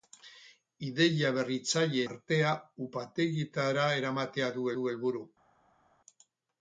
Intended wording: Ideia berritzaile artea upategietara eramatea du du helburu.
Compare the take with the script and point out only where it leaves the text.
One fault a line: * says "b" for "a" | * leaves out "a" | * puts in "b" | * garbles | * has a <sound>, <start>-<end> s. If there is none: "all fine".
all fine